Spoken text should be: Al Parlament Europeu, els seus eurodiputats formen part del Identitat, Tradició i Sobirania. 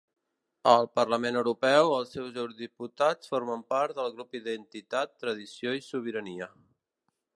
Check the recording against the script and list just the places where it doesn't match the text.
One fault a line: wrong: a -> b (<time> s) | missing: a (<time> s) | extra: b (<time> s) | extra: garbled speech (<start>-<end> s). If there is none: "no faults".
extra: grup (4.2 s)